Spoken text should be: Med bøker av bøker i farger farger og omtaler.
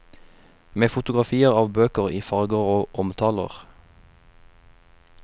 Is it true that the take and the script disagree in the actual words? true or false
true